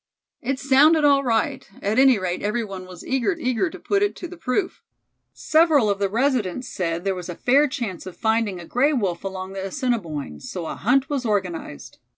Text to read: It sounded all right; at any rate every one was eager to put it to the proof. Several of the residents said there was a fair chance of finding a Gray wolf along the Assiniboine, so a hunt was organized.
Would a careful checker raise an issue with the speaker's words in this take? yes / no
yes